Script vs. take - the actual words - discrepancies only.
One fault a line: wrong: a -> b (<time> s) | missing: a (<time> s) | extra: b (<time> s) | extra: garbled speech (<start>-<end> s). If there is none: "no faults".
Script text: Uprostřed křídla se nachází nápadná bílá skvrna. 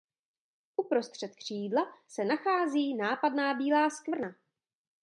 no faults